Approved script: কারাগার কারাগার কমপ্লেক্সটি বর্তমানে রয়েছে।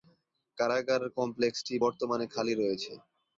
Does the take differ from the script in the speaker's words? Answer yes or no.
yes